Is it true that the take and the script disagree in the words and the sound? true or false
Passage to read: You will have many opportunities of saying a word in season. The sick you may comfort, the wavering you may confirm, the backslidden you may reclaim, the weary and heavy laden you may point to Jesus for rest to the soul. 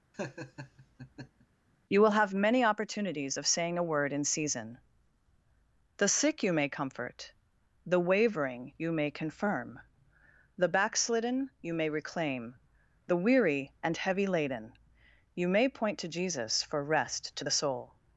true